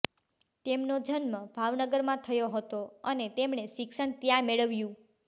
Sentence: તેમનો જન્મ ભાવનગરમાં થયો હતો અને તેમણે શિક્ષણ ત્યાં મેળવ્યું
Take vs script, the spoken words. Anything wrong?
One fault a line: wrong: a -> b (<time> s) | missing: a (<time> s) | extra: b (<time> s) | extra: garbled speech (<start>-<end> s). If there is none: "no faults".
no faults